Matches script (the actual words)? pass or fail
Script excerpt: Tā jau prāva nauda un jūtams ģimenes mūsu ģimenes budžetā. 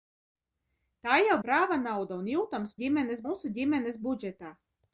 pass